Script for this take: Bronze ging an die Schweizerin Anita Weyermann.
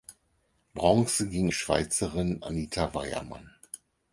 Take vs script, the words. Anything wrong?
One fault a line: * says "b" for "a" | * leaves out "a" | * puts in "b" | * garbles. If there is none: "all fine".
* leaves out "an"